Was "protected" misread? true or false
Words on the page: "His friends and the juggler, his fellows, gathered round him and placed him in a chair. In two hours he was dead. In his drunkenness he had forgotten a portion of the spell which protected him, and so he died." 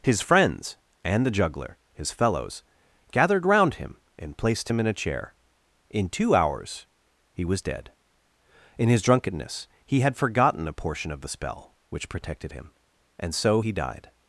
false